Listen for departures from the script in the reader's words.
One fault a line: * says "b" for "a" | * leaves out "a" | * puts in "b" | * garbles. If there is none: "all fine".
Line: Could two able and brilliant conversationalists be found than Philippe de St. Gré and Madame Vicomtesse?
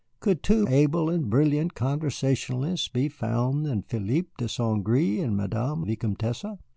all fine